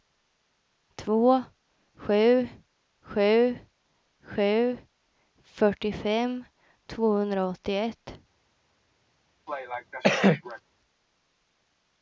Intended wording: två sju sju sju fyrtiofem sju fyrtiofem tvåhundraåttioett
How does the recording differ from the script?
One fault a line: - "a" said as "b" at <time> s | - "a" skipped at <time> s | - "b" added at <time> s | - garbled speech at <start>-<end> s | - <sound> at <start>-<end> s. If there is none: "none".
- "sju fyrtiofem" skipped at 6.4 s
- cough at 9.5-10.6 s